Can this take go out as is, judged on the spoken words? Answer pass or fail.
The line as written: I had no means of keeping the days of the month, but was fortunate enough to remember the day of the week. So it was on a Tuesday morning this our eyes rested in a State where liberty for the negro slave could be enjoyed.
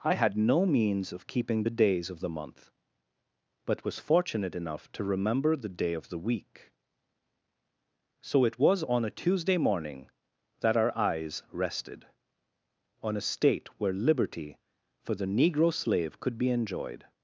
fail